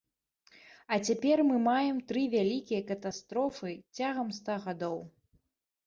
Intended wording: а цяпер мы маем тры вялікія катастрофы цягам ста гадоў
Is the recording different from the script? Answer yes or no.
no